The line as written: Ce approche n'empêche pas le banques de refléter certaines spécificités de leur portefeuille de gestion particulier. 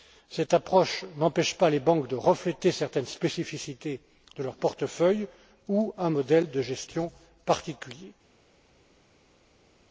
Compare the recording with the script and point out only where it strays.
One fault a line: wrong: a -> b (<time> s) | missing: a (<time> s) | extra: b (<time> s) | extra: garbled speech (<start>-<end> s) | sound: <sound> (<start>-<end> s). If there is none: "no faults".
wrong: Ce -> Cette (0.3 s)
wrong: le -> les (1.7 s)
extra: ou un modèle (5.7 s)